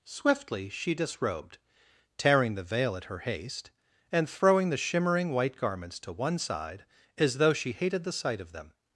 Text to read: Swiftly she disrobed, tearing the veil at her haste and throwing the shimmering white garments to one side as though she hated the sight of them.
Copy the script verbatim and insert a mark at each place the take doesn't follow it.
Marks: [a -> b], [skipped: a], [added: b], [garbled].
Swiftly she disrobed, tearing the veil at her haste and throwing the shimmering white garments to one side as though she hated the sight of them.